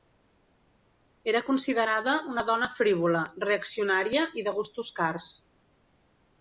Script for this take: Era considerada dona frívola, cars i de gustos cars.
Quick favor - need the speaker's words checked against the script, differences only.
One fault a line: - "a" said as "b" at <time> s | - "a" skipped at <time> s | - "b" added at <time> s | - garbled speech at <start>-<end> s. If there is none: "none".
- "una" added at 2.3 s
- "cars" said as "reaccionària" at 3.5 s